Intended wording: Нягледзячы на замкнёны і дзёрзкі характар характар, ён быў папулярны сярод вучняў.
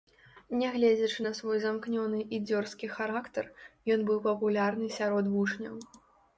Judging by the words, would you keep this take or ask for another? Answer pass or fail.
fail